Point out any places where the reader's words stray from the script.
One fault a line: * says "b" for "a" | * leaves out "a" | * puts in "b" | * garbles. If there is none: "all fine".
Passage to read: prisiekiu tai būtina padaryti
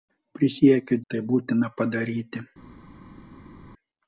all fine